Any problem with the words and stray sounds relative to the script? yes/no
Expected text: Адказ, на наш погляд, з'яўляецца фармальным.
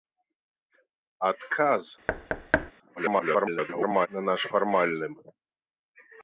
yes